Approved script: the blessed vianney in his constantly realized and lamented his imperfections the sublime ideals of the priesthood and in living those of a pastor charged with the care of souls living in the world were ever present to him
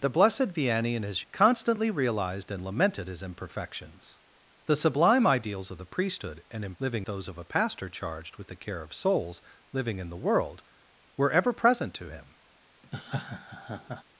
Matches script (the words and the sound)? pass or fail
fail